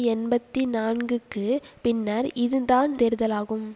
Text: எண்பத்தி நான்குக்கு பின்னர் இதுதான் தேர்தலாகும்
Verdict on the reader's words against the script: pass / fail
pass